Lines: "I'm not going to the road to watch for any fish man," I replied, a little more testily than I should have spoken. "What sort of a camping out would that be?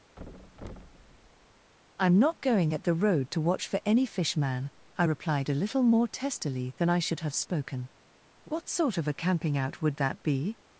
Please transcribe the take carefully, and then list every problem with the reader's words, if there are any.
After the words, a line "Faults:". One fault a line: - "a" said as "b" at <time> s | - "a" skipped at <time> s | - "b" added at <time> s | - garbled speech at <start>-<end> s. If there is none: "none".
"I'm not going at the road to watch for any fish man," I replied, a little more testily than I should have spoken. "What sort of a camping out would that be?
Faults:
- "to" said as "at" at 2.7 s